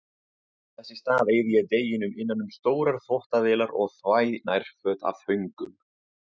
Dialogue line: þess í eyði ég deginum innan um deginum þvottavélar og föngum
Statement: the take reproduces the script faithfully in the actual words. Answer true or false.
false